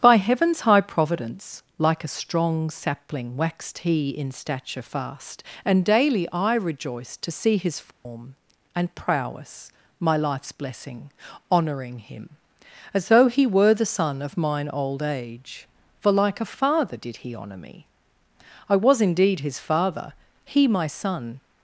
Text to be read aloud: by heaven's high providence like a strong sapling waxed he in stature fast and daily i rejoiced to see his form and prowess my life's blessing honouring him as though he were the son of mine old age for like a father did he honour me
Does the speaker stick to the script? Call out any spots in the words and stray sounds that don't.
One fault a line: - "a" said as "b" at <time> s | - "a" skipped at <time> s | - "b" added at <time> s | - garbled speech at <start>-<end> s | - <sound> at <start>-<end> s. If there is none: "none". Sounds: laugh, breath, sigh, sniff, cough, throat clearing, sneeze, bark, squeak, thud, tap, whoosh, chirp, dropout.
- dropout at 7.9-8.1 s
- "i was indeed his father he my son" added at 18.7 s